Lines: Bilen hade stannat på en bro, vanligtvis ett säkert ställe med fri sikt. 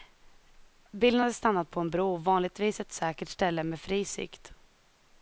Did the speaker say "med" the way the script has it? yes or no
yes